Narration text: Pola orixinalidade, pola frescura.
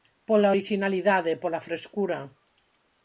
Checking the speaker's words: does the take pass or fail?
pass